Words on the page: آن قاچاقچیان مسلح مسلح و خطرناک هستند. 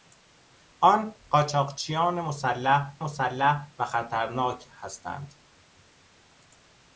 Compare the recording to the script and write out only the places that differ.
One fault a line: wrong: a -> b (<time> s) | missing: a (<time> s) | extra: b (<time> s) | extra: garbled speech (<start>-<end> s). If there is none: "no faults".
no faults